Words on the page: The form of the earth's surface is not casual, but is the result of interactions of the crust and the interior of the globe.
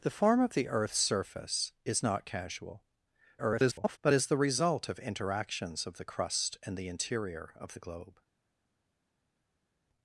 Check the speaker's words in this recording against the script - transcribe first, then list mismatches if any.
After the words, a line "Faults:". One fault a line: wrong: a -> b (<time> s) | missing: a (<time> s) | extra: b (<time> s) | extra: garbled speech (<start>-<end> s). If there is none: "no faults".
The form of the earth's surface is not casual, [garbled] but is the result of interactions of the crust and the interior of the globe.
Faults:
extra: garbled speech (3.4-4.0 s)